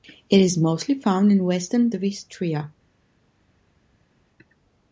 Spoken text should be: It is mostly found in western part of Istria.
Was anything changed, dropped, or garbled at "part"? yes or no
yes